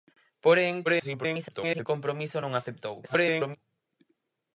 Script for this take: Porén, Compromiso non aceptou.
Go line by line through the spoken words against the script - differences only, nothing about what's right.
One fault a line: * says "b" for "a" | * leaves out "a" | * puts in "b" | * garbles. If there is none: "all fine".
* garbles
* garbles